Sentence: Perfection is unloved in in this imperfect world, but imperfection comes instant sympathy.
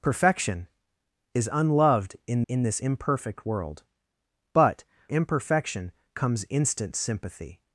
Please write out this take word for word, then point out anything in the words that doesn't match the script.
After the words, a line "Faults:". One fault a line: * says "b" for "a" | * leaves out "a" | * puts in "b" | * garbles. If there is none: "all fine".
Perfection is unloved in in this imperfect world, but imperfection comes instant sympathy.
Faults:
all fine